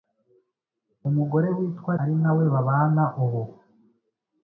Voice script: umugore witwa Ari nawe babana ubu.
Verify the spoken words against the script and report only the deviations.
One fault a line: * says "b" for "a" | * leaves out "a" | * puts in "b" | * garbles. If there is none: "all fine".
all fine